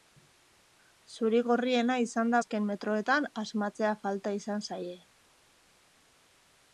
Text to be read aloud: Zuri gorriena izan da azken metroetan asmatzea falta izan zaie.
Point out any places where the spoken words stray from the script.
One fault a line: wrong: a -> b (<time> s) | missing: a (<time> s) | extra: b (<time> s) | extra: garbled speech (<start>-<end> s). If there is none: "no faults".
no faults